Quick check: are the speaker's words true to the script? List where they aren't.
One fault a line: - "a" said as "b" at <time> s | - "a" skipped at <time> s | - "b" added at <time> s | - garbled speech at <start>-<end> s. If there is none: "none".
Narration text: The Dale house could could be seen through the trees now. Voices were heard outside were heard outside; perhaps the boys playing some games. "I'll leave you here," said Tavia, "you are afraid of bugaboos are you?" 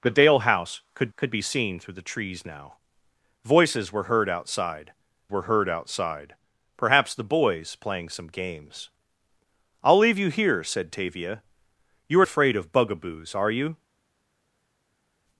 none